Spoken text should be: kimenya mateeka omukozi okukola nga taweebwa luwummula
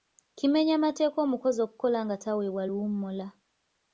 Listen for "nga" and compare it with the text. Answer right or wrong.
right